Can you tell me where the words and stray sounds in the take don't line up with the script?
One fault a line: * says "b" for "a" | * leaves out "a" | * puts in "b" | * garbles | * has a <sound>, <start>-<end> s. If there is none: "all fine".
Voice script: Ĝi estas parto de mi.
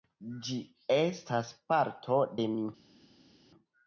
all fine